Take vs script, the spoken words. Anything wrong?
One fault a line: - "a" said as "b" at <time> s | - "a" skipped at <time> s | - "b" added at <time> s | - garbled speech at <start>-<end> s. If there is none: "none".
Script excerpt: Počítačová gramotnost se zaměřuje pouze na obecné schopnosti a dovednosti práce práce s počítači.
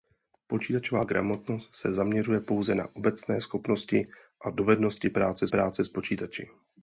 none